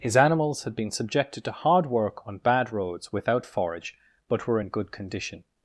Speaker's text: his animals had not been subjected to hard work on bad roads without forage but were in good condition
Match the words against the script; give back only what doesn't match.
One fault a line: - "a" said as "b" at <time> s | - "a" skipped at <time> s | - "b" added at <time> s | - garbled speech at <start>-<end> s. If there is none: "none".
- "not" skipped at 0.8 s